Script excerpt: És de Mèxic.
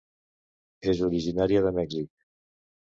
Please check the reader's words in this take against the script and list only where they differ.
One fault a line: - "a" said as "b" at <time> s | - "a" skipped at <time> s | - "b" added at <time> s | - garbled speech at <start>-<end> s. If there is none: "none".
- "originària" added at 1.1 s